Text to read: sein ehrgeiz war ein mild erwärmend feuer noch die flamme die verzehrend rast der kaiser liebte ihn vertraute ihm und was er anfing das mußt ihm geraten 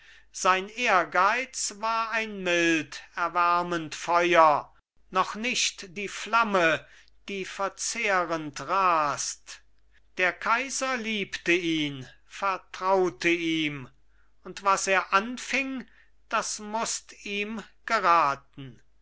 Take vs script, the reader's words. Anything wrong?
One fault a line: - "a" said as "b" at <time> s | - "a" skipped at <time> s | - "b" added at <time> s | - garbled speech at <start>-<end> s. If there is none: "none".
- "nicht" added at 5.3 s